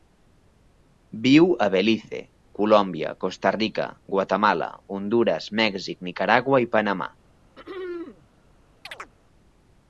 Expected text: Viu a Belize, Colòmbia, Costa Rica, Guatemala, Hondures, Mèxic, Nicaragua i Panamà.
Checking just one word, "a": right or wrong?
right